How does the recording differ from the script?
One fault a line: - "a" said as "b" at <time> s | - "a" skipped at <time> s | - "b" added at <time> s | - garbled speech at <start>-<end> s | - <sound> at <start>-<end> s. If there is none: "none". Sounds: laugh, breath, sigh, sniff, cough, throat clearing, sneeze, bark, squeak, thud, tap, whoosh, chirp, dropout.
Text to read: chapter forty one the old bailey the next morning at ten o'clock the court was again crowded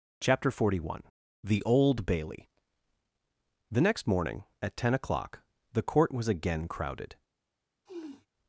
- sniff at 7.9-8.3 s